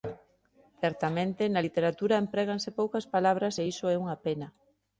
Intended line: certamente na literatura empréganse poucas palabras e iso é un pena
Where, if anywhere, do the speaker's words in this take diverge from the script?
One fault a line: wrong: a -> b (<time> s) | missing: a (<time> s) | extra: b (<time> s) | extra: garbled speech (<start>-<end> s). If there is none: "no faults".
wrong: un -> unha (4.0 s)